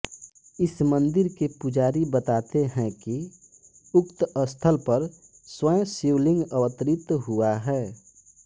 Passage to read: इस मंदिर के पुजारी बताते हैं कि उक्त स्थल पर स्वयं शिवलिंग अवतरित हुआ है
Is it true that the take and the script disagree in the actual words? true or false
false